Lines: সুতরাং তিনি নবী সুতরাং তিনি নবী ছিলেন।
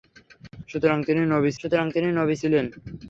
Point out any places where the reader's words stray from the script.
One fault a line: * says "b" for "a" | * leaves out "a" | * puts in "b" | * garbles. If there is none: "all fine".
all fine